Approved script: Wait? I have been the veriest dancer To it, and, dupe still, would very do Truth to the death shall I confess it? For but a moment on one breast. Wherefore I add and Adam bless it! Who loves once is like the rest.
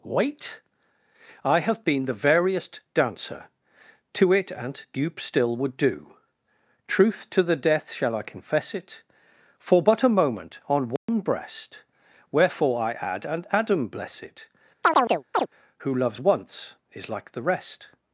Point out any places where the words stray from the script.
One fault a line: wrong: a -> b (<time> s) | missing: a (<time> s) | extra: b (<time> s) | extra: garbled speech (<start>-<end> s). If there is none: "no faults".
missing: very (5.8 s)